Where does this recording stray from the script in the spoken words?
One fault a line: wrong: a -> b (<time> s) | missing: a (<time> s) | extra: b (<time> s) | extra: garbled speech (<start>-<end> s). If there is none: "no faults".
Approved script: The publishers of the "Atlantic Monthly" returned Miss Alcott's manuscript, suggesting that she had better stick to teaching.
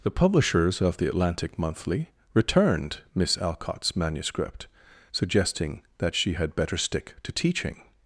no faults